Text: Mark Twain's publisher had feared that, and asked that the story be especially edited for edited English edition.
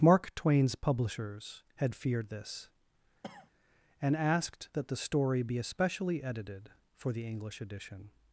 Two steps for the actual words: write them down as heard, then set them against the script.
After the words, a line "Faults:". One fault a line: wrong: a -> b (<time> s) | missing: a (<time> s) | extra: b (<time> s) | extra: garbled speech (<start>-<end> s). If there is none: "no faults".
Mark Twain's publishers had feared this, and asked that the story be especially edited for the English edition.
Faults:
wrong: publisher -> publishers (0.7 s)
wrong: that -> this (2.3 s)
wrong: edited -> the (7.1 s)